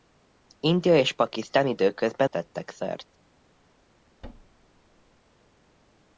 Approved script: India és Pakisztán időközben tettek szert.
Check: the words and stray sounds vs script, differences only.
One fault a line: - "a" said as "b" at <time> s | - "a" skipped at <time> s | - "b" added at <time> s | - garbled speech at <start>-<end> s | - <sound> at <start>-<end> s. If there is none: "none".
- thud at 4.2-5.2 s